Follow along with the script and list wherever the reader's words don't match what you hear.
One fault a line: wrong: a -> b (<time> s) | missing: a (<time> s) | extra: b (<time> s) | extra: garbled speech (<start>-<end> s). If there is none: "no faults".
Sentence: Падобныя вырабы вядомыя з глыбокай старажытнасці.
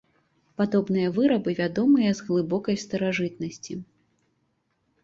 no faults